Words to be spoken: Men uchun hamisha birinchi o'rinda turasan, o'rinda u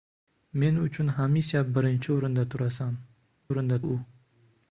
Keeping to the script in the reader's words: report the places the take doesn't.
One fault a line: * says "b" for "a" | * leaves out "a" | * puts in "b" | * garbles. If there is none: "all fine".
all fine